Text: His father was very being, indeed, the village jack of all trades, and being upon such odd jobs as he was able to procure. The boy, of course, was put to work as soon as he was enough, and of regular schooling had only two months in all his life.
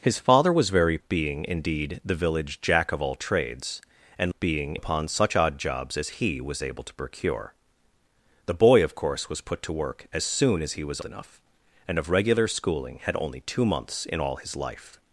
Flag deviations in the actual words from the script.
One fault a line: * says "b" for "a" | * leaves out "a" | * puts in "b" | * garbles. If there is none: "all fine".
all fine